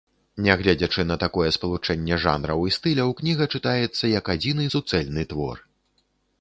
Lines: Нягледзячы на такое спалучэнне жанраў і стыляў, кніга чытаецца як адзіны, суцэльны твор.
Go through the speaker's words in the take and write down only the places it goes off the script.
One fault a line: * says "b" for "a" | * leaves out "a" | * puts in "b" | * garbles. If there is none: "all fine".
all fine